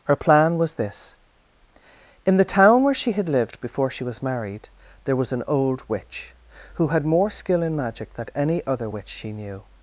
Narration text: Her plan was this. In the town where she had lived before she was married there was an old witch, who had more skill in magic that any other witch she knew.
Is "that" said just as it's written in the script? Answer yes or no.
no